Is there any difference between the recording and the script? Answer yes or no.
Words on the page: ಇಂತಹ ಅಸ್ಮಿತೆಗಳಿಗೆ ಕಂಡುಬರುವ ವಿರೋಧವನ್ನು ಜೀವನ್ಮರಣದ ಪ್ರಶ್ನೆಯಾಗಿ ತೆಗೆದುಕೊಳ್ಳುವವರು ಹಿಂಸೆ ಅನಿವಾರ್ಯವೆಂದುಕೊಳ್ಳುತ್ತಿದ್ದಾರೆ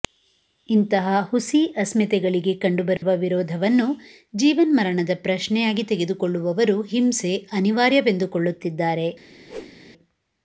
yes